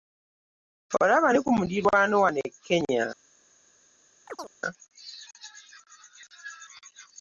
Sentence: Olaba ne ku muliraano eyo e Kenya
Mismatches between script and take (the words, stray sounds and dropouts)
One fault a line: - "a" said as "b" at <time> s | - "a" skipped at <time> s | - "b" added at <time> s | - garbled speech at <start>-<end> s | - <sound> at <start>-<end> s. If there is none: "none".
- "eyo" said as "wano" at 2.2 s
- chirp at 4.3-4.5 s